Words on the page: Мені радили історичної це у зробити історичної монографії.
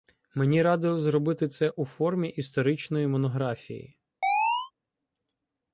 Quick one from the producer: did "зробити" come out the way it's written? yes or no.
no